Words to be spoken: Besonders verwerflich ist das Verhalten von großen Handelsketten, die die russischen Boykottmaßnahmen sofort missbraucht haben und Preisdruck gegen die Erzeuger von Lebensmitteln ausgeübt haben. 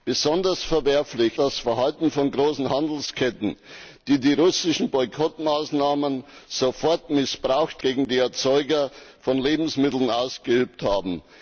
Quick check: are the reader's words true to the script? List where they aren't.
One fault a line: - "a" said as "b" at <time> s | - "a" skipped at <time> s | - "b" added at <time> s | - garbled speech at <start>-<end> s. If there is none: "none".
- "ist" skipped at 1.4 s
- "haben und Preisdruck" skipped at 7.8 s